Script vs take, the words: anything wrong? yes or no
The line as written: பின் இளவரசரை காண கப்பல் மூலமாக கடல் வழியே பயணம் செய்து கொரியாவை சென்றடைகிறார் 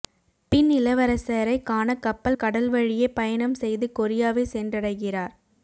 yes